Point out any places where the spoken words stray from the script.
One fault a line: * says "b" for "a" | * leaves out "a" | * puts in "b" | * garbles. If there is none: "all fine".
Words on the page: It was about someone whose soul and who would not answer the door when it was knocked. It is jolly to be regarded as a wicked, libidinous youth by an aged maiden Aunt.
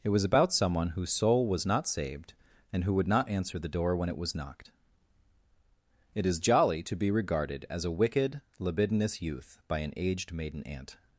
* puts in "was not saved"